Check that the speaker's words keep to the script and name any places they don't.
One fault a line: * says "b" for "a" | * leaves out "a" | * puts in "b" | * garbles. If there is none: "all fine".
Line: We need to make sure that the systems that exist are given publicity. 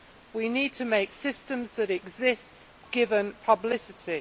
* leaves out "sure that the"
* leaves out "are"